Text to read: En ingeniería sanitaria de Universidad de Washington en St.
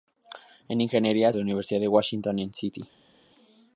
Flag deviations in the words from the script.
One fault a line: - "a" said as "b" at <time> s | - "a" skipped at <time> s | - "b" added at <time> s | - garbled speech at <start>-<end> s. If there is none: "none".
- "sanitaria" skipped at 1.3 s